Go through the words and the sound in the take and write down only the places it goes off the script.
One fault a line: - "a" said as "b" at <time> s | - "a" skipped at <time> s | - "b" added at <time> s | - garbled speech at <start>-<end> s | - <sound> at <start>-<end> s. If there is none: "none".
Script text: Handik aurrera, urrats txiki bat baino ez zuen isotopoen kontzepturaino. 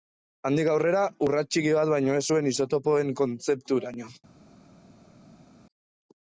none